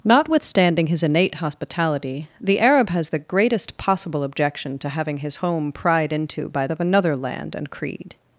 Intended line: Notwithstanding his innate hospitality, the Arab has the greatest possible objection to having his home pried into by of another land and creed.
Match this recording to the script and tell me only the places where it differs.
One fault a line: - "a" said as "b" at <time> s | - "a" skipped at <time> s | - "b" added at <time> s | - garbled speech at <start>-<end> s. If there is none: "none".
none